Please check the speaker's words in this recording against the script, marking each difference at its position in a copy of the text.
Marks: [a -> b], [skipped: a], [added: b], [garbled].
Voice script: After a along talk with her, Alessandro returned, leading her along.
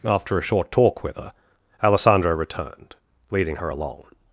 After a [along -> short] talk with her, Alessandro returned, leading her along.